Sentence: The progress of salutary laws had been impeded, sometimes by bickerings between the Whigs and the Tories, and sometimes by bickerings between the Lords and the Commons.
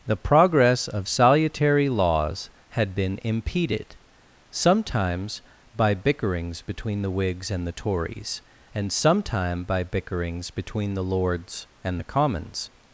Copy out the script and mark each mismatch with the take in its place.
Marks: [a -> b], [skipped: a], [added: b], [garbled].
The progress of salutary laws had been impeded, sometimes by bickerings between the Whigs and the Tories, and [sometimes -> sometime] by bickerings between the Lords and the Commons.